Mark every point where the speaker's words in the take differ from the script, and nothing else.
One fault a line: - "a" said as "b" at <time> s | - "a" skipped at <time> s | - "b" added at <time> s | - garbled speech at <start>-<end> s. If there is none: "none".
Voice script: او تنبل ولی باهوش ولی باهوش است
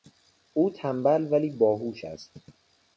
- "ولی باهوش" skipped at 2.0 s